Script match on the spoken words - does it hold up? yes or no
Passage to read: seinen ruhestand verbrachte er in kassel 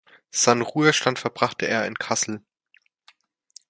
yes